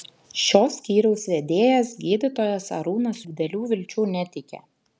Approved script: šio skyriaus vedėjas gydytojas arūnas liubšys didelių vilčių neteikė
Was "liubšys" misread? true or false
true